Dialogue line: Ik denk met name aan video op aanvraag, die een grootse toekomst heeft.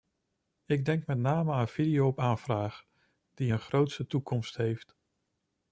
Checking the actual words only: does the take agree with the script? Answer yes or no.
yes